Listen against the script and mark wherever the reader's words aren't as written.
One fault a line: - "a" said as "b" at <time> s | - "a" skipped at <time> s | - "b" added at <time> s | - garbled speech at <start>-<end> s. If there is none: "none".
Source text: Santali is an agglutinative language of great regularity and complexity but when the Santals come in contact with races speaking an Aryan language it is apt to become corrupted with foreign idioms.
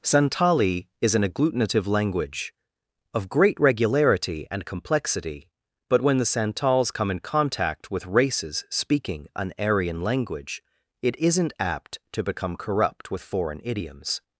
- "is" said as "isn't" at 11.2 s
- "corrupted" said as "corrupt" at 12.6 s